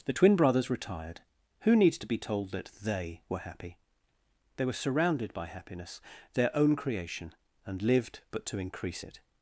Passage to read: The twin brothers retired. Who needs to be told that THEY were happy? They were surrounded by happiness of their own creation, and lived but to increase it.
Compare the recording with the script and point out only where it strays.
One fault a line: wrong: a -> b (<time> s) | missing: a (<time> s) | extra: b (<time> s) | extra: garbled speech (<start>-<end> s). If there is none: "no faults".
missing: of (6.0 s)